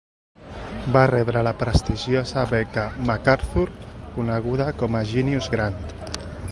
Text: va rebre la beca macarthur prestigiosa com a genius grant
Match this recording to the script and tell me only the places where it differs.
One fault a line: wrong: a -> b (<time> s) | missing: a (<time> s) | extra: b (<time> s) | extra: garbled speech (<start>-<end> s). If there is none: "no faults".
extra: prestigiosa (1.6 s)
wrong: prestigiosa -> coneguda (4.2 s)